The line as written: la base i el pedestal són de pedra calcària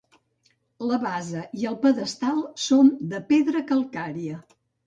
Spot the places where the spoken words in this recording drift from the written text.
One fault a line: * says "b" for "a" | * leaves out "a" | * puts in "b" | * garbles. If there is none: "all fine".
all fine